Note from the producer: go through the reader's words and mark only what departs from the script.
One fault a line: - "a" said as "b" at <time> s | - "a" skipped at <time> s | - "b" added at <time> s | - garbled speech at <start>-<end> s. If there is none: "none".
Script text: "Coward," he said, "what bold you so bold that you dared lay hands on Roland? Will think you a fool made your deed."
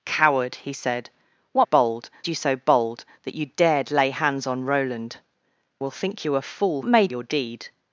none